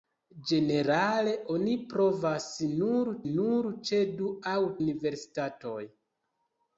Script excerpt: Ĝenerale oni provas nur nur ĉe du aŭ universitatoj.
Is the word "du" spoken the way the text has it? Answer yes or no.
yes